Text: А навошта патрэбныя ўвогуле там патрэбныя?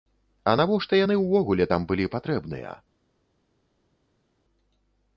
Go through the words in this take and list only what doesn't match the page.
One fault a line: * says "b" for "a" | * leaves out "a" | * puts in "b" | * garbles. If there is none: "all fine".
* says "яны" for "патрэбныя"
* puts in "былі"